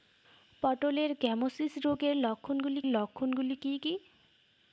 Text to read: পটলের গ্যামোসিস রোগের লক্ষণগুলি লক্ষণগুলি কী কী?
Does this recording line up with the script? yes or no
yes